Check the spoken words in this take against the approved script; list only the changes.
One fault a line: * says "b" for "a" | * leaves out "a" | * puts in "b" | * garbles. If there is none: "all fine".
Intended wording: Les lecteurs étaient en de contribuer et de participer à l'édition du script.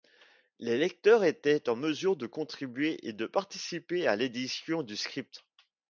* puts in "mesure"